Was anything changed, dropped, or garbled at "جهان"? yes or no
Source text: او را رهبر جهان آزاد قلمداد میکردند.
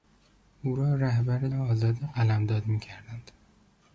yes